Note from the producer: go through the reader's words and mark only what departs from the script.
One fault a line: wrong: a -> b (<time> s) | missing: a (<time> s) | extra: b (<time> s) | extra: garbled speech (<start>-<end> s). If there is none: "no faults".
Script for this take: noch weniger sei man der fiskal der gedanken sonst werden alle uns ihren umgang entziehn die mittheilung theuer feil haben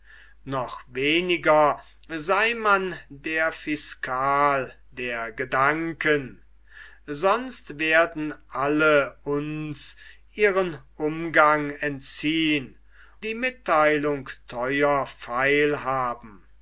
no faults